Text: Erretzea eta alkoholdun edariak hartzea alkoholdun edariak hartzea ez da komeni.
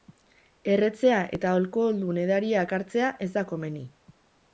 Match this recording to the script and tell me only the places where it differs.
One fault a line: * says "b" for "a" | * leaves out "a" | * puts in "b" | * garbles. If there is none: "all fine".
* leaves out "alkoholdun edariak hartzea"